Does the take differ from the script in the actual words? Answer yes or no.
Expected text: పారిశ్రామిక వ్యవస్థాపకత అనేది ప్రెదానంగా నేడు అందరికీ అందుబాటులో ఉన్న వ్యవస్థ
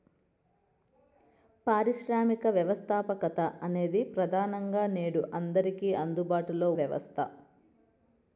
yes